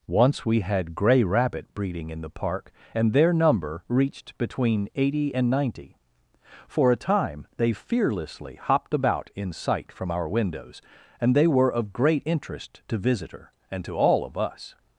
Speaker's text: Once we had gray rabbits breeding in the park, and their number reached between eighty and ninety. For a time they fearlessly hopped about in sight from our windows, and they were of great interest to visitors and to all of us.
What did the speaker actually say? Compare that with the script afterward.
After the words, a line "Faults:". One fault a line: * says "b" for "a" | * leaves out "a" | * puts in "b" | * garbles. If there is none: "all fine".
Once we had gray rabbit breeding in the park, and their number reached between eighty and ninety. For a time they fearlessly hopped about in sight from our windows, and they were of great interest to visitor and to all of us.
Faults:
* says "rabbit" for "rabbits"
* says "visitor" for "visitors"